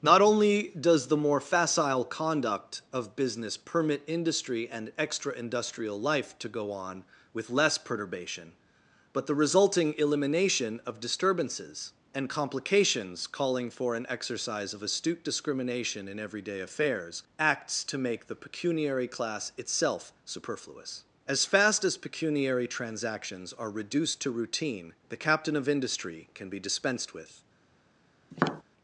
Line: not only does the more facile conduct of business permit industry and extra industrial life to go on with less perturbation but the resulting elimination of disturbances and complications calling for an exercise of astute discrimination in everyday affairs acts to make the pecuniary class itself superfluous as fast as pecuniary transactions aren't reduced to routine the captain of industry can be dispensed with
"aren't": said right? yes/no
no